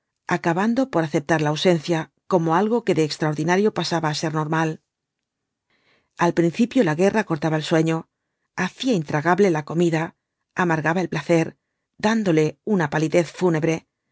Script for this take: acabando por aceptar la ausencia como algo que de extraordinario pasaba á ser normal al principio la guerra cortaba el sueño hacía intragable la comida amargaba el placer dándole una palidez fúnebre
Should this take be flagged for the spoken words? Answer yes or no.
no